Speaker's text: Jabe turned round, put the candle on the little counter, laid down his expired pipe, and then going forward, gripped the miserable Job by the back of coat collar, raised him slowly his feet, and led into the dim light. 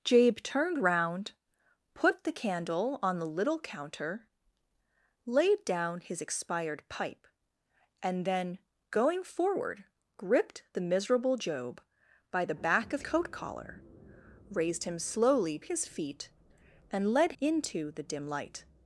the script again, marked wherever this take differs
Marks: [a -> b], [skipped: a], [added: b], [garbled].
Jabe turned round, put the candle on the little counter, laid down his expired pipe, and then going forward, gripped the miserable Job by the back of coat collar, raised him slowly his feet, and led into the dim light.